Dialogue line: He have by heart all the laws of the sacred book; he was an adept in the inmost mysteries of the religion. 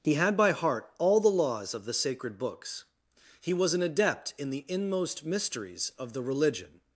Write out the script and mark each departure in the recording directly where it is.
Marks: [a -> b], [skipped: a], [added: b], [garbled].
He [have -> had] by heart all the laws of the sacred [book; -> books] he was an adept in the inmost mysteries of the religion.